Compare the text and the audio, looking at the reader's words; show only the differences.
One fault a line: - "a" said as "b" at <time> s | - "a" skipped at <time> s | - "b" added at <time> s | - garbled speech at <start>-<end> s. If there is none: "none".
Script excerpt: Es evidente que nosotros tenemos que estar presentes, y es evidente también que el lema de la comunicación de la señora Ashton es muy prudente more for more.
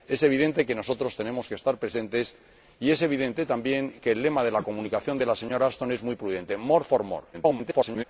- garbled speech at 7.3-8.0 s